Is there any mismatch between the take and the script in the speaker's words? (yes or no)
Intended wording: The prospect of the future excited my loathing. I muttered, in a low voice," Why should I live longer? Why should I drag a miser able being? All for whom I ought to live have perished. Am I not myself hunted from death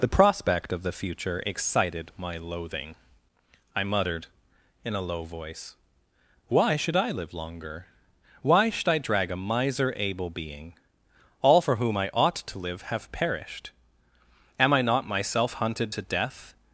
yes